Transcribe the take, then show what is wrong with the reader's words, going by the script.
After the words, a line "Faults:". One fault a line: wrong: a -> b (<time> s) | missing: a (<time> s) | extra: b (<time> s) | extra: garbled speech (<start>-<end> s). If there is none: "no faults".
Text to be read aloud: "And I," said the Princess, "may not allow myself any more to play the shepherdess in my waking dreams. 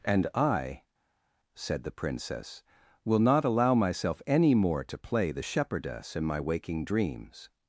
"And I," said the Princess, "will not allow myself any more to play the shepherdess in my waking dreams.
Faults:
wrong: may -> will (3.0 s)